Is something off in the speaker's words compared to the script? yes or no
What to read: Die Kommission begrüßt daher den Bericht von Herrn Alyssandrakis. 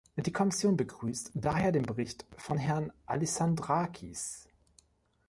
no